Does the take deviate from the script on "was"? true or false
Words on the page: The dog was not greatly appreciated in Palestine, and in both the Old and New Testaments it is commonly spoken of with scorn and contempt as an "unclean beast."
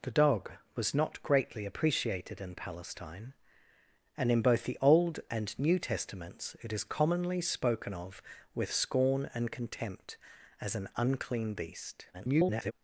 false